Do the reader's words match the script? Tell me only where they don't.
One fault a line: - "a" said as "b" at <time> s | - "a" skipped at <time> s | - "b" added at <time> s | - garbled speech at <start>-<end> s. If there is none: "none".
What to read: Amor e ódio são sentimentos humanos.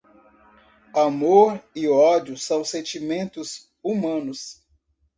none